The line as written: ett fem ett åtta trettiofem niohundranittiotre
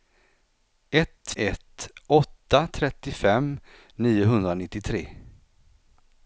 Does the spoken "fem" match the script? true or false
false